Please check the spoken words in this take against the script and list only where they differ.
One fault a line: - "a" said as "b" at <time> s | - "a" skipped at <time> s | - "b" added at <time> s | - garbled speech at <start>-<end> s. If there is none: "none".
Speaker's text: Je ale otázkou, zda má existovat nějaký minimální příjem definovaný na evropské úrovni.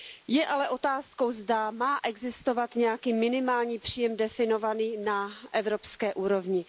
none